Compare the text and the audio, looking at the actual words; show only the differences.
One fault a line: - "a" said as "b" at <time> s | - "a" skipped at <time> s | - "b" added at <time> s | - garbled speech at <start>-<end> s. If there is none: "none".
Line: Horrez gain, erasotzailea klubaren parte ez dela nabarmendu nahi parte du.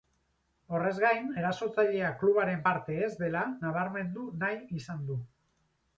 - "parte" said as "izan" at 4.8 s